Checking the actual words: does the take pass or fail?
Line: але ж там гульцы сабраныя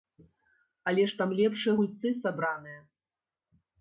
fail